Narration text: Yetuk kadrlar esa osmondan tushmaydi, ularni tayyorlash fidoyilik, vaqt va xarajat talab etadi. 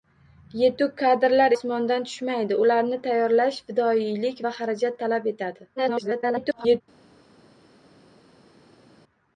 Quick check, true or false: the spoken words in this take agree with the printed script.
false